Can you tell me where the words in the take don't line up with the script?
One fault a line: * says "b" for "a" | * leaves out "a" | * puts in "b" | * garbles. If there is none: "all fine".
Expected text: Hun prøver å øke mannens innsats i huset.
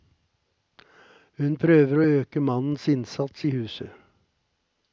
all fine